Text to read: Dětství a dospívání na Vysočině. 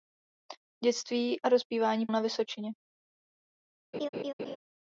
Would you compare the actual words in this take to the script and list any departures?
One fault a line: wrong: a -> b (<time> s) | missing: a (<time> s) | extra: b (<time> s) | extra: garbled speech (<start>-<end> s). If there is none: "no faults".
no faults